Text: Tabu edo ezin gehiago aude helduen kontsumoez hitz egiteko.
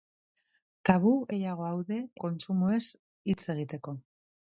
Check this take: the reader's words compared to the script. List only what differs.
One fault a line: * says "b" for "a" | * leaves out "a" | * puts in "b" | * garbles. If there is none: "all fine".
* leaves out "edo ezin"
* leaves out "helduen"